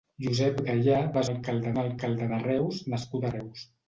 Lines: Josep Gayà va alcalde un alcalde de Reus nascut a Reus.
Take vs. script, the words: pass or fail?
pass